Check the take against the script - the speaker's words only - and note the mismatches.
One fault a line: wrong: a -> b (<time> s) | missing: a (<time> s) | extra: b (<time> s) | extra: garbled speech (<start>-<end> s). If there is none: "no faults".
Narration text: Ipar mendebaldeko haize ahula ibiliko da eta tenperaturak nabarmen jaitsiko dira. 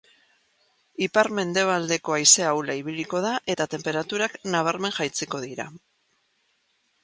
no faults